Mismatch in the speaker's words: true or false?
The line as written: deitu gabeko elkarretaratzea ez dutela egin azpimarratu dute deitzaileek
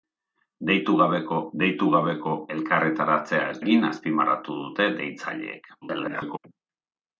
true